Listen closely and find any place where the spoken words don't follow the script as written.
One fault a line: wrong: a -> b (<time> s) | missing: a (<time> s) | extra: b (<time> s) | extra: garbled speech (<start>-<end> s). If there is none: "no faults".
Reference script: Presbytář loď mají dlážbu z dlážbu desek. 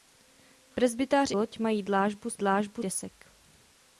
no faults